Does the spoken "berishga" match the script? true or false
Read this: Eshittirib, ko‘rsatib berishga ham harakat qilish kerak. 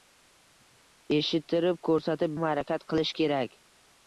false